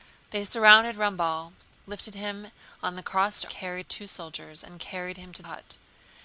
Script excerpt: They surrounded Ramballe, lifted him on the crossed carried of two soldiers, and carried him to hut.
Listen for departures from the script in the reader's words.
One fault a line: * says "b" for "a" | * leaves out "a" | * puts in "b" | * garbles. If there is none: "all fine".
all fine